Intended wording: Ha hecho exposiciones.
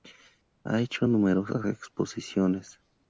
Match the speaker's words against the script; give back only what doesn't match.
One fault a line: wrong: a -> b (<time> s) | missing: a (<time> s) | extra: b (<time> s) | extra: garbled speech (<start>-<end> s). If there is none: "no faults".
extra: numerosas (1.0 s)